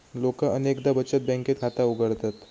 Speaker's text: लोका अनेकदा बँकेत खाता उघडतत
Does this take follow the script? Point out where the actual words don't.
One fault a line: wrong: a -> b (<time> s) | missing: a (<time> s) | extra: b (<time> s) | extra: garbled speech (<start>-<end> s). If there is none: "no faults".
extra: बचत (0.9 s)